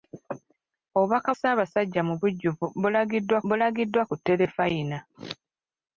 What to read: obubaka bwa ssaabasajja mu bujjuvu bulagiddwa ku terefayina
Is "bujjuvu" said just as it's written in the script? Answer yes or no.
yes